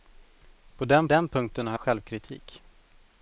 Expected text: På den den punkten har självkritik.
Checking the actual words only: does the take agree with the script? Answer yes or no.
yes